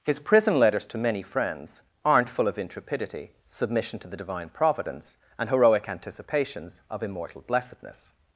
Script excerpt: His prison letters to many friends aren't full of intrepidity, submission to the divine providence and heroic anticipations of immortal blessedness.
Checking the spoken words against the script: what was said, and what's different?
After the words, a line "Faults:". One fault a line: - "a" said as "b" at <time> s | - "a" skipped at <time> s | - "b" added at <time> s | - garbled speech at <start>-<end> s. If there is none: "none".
His prison letters to many friends aren't full of intrepidity, submission to the divine providence and heroic anticipations of immortal blessedness.
Faults:
none